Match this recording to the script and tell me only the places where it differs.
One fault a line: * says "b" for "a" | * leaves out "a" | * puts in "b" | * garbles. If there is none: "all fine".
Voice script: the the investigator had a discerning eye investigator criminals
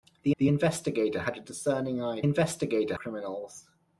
all fine